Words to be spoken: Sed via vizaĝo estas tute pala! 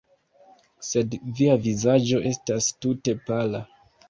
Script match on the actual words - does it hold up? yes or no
yes